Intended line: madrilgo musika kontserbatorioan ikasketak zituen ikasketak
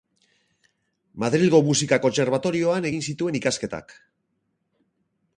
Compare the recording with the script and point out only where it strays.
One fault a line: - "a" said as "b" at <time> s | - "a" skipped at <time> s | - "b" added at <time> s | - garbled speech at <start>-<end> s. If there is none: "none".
- "ikasketak" said as "egin" at 2.9 s